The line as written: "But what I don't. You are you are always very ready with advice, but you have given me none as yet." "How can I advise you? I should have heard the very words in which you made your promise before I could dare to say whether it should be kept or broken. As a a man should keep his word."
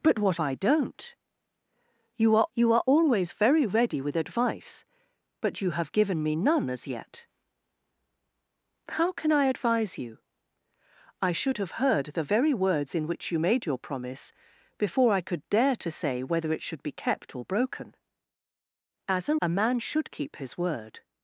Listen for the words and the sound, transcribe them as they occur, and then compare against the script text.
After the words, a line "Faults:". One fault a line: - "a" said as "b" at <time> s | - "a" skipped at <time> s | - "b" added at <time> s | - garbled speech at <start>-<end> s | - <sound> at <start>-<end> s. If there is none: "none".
"But what I don't. You are you are always very ready with advice, but you have given me none as yet." "How can I advise you? I should have heard the very words in which you made your promise before I could dare to say whether it should be kept or broken. As a a man should keep his word."
Faults:
none